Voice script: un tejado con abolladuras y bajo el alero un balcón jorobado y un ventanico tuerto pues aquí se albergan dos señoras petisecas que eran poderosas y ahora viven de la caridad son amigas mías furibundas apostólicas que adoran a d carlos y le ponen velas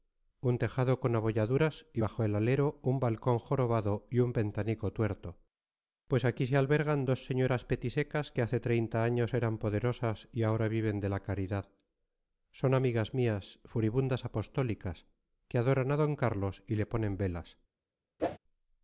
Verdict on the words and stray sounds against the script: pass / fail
fail